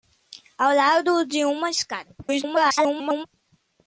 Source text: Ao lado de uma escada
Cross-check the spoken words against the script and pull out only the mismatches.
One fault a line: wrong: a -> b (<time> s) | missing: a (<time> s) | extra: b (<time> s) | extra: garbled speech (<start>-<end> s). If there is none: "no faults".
extra: garbled speech (2.2-3.3 s)